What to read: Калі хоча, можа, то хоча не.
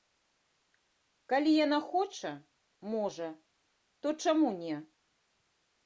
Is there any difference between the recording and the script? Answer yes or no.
yes